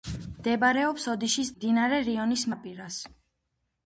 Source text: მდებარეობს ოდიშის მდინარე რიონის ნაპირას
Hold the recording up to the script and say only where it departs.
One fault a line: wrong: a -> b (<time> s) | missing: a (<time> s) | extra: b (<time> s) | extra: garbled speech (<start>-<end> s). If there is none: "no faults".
no faults